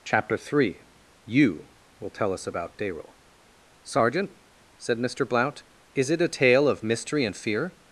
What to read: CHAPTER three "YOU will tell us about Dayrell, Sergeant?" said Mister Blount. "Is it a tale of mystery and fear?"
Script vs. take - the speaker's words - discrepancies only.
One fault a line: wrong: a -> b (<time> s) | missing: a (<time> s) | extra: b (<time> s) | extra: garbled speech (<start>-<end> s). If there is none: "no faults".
no faults